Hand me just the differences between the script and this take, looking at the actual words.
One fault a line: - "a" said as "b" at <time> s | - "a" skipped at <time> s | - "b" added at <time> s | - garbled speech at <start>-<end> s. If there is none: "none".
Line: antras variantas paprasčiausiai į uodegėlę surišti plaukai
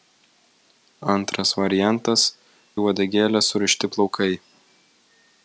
- "paprasčiausiai" skipped at 2.2 s